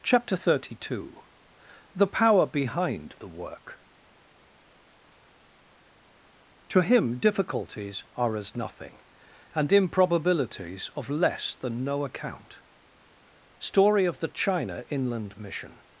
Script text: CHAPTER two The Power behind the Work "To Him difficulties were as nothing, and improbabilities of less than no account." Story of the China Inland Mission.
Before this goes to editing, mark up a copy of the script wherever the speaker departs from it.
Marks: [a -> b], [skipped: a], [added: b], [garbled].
CHAPTER [added: thirty] two The Power behind the Work "To Him difficulties [were -> are] as nothing, and improbabilities of less than no account." Story of the China Inland Mission.